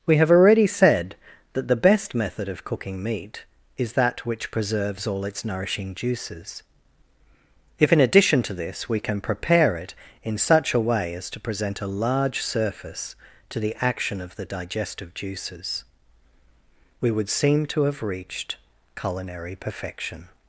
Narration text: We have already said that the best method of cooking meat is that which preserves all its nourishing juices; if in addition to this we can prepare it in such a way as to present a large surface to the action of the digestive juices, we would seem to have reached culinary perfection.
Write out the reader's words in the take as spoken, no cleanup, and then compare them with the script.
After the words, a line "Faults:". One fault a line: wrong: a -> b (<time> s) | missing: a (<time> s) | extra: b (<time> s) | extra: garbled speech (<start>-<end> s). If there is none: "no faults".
We have already said that the best method of cooking meat is that which preserves all its nourishing juices; if in addition to this we can prepare it in such a way as to present a large surface to the action of the digestive juices, we would seem to have reached culinary perfection.
Faults:
no faults